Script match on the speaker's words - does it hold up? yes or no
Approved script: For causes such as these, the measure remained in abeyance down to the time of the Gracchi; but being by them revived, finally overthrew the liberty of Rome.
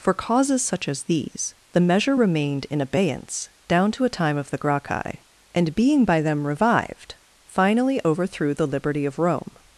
no